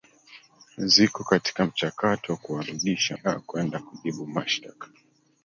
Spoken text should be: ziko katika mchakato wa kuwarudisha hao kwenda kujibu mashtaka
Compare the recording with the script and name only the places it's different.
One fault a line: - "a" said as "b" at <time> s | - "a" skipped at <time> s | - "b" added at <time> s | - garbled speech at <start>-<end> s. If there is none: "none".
none